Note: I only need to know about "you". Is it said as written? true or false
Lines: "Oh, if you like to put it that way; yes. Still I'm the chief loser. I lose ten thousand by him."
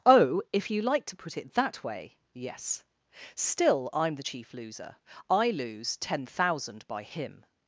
true